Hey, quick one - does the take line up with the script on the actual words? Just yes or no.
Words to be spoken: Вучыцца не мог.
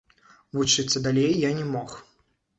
no